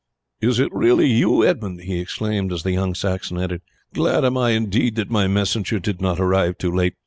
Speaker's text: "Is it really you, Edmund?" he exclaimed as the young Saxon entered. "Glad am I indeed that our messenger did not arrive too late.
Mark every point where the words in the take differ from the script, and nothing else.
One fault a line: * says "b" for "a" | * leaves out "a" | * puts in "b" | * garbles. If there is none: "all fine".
* says "my" for "our"